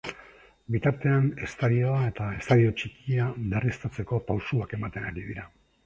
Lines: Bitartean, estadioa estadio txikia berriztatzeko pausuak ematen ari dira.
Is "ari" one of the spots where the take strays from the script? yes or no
no